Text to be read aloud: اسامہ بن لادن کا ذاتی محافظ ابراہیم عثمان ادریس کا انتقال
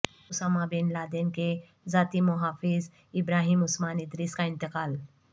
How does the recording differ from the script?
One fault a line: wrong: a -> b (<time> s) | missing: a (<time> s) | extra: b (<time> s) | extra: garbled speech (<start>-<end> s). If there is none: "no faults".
wrong: کا -> کے (1.3 s)